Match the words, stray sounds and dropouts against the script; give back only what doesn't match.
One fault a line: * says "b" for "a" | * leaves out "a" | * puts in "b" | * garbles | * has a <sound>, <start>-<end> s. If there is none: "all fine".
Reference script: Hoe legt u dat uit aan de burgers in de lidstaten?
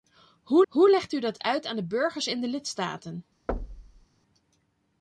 * puts in "hoe"
* has a thud, 3.5-4.1 s